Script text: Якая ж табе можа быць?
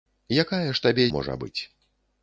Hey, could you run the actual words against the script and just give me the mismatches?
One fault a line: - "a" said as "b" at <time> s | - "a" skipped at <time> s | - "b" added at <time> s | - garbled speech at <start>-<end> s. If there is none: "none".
none